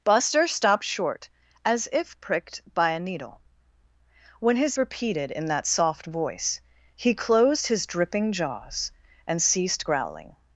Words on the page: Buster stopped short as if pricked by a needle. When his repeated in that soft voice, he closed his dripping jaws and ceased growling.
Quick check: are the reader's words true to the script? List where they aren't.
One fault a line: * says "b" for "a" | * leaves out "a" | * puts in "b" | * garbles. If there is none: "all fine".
all fine